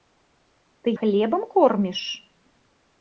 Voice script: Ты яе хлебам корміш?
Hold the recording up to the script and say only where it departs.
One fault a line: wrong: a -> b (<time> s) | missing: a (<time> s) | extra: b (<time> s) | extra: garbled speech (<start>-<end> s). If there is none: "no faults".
missing: яе (0.9 s)